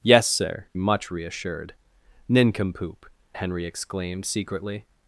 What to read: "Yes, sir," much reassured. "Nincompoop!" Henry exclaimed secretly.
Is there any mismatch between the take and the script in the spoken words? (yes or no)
no